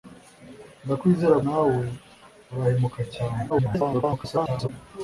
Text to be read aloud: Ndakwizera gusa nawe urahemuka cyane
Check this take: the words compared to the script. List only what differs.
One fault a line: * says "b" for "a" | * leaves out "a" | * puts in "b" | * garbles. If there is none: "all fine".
* leaves out "gusa"
* garbles